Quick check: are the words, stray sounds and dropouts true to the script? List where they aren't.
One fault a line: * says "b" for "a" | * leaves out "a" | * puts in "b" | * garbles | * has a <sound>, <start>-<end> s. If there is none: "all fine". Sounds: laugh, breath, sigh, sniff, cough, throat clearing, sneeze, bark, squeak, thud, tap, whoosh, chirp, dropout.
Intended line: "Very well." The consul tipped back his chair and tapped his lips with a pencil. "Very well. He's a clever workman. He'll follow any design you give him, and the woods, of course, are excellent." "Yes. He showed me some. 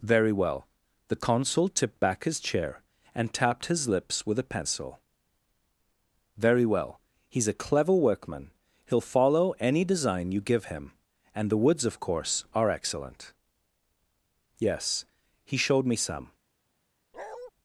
* has a bark, 17.1-17.5 s